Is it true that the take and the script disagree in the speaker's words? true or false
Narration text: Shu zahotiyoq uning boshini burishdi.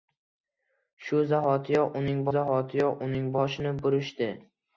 true